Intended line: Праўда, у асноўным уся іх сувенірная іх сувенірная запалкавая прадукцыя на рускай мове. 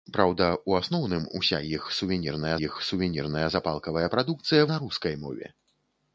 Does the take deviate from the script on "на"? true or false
false